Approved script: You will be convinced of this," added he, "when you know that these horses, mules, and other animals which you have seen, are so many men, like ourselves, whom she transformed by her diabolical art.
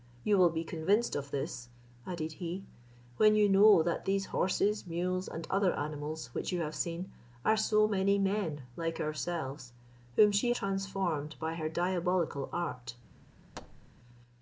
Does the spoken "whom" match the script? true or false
true